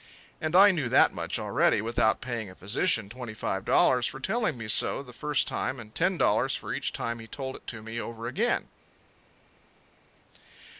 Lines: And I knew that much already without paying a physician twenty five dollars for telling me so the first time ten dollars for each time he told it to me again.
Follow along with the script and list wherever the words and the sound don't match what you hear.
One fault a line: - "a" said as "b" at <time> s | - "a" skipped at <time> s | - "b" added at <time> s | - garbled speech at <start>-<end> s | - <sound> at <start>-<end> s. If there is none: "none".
- "and" added at 5.8 s
- "over" added at 8.0 s